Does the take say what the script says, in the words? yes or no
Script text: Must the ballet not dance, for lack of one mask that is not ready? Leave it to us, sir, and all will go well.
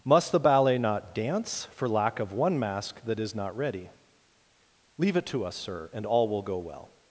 yes